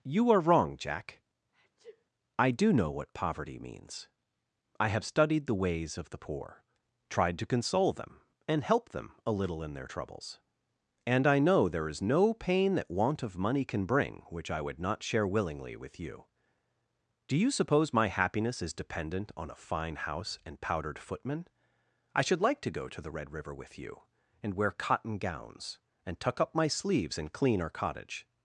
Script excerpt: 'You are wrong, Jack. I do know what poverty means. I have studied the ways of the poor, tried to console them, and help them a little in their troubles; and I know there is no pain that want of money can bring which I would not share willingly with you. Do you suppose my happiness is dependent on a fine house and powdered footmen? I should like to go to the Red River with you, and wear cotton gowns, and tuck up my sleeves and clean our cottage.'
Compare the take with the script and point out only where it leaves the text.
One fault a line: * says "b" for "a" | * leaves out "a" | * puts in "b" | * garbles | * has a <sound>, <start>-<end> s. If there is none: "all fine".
* has a sneeze, 1.5-2.1 s